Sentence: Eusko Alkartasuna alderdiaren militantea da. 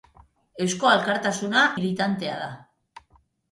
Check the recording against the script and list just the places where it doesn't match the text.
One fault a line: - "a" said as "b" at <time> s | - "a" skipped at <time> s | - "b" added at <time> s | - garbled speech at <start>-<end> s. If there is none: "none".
- "alderdiaren" skipped at 1.7 s